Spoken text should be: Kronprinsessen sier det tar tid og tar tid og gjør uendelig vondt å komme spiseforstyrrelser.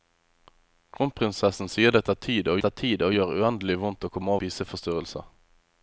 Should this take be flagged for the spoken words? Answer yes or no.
no